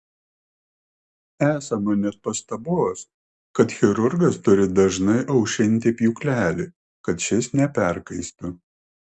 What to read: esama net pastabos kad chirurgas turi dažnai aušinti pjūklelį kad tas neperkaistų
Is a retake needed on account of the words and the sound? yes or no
yes